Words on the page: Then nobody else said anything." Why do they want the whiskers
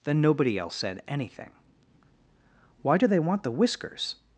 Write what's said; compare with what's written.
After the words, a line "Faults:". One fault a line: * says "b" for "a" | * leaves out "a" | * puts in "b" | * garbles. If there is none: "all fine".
Then nobody else said anything." Why do they want the whiskers
Faults:
all fine